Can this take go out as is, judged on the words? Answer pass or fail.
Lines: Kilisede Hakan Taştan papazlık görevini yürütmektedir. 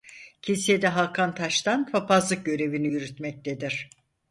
pass